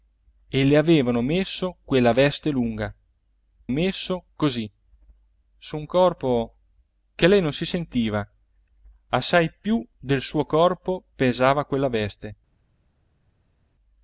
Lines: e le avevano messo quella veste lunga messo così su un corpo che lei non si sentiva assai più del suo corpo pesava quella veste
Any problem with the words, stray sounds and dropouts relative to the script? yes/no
no